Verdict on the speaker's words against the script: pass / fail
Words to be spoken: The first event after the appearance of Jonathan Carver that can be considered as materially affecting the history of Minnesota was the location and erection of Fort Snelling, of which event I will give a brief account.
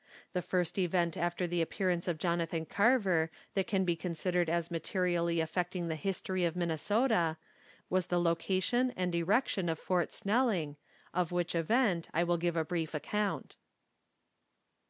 pass